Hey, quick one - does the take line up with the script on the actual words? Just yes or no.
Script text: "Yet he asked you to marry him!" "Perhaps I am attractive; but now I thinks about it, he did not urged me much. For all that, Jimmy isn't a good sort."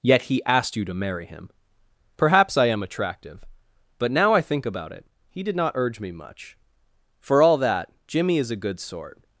no